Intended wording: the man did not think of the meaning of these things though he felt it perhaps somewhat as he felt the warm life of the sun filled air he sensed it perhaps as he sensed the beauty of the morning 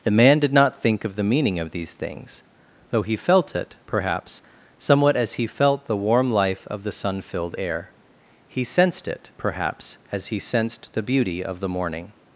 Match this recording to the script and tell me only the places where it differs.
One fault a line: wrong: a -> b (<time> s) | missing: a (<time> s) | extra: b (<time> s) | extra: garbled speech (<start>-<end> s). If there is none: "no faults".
no faults